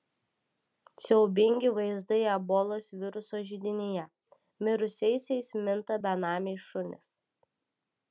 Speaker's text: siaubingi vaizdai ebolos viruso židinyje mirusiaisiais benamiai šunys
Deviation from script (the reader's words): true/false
true